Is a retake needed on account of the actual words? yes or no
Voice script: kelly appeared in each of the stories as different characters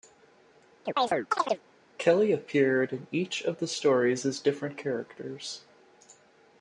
no